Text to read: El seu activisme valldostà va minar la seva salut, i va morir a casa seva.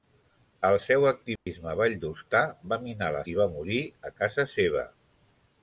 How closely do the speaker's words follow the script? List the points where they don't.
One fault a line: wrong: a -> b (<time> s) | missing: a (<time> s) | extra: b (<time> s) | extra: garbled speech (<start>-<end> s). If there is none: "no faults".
missing: seva salut (3.2 s)